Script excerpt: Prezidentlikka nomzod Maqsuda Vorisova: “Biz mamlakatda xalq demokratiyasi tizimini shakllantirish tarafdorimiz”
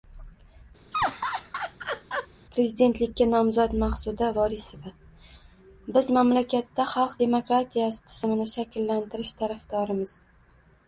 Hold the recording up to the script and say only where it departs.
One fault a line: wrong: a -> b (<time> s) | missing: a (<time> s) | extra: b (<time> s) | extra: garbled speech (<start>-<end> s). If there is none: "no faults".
no faults